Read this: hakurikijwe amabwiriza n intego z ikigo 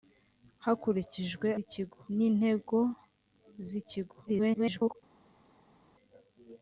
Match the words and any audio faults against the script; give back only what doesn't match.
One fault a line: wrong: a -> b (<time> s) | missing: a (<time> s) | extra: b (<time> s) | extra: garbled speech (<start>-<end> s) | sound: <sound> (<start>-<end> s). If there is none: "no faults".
wrong: amabwiriza -> ikigo (1.6 s)
extra: garbled speech (4.3-5.0 s)